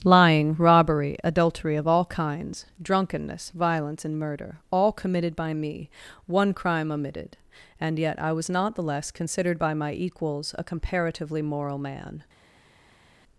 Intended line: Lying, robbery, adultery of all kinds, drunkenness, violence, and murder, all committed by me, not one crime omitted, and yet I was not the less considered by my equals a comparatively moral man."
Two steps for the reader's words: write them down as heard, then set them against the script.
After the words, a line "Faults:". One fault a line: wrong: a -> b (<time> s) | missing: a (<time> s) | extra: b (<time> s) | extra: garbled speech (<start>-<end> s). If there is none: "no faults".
Lying, robbery, adultery of all kinds, drunkenness, violence, and murder, all committed by me, one crime omitted, and yet I was not the less considered by my equals a comparatively moral man."
Faults:
missing: not (5.9 s)